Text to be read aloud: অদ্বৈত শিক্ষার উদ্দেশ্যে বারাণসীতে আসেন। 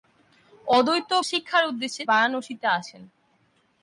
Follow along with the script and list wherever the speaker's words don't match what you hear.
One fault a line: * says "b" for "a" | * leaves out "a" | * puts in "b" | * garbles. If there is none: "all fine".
all fine